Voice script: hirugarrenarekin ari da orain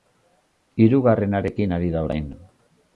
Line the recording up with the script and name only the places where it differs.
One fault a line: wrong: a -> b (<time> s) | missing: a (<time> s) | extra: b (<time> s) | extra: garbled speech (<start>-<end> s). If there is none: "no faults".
no faults